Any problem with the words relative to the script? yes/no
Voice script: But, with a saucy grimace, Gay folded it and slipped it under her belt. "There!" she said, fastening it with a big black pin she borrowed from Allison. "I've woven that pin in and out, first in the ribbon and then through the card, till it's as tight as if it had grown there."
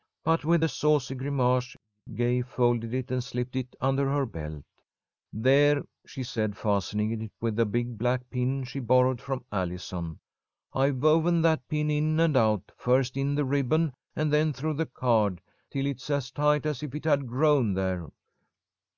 no